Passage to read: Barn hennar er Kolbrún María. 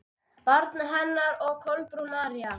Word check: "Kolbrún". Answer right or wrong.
right